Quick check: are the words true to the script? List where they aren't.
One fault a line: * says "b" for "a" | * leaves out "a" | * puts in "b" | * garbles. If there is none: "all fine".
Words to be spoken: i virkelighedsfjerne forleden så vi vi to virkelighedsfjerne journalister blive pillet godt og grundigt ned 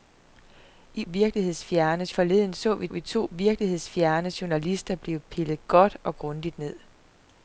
all fine